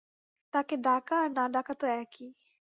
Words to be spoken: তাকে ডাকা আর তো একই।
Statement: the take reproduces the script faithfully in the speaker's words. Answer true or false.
false